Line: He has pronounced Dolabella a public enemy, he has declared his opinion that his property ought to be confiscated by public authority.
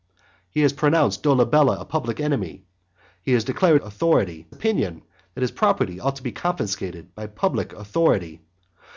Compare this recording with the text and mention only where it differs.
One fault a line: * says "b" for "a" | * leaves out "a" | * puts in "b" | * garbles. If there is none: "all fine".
* says "authority" for "his"